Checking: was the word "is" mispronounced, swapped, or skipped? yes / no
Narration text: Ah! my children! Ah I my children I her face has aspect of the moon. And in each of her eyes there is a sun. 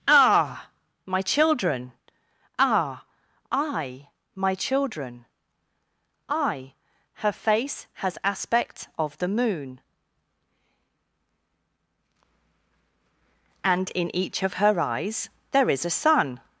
no